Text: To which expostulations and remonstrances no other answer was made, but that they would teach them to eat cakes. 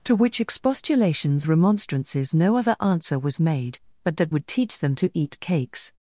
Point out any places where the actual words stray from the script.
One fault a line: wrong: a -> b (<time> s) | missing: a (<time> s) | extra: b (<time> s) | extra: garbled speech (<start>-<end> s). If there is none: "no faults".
missing: and (1.4 s)
missing: they (4.3 s)